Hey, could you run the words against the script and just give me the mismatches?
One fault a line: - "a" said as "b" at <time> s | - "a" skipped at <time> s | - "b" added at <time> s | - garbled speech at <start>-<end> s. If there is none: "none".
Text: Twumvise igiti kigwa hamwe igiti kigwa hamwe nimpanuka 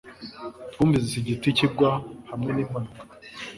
- "igiti kigwa hamwe" skipped at 2.5 s